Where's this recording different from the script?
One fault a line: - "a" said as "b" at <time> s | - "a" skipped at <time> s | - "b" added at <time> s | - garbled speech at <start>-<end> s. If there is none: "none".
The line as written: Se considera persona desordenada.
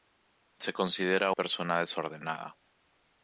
none